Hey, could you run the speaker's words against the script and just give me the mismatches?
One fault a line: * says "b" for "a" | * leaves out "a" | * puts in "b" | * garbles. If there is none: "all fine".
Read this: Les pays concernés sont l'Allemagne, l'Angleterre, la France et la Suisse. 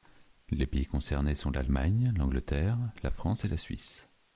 all fine